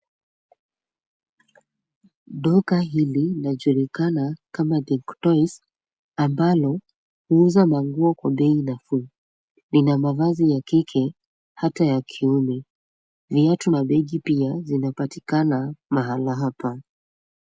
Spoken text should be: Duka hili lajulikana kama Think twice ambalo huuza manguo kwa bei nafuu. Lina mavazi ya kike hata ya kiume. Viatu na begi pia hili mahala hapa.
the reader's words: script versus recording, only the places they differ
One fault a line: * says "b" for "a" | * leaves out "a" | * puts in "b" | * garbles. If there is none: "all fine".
* says "zinapatikana" for "hili"